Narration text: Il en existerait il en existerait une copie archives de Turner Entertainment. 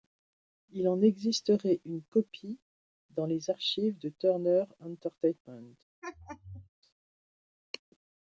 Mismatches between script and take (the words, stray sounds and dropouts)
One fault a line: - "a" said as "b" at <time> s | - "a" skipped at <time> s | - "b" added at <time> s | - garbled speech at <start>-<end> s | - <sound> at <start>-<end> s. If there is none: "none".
- "il en existerait une copie" said as "une copie dans les" at 1.9 s
- laugh at 6.0-6.7 s